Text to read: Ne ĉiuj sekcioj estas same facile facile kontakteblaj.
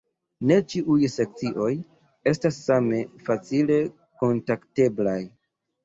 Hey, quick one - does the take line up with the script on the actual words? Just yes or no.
no